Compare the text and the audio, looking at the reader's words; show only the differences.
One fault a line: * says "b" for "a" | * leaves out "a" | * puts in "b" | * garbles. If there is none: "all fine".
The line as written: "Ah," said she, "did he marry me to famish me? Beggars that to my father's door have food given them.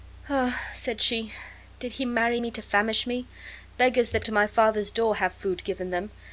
all fine